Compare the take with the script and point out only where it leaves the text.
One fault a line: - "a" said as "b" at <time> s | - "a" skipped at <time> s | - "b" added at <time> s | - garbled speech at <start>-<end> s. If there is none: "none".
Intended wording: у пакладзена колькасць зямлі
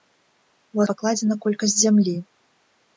none